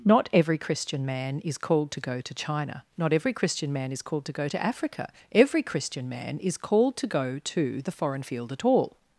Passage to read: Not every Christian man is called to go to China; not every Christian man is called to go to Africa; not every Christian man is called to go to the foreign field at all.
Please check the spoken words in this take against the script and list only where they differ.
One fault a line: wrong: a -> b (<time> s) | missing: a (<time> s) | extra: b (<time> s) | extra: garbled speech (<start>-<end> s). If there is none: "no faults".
missing: not (5.1 s)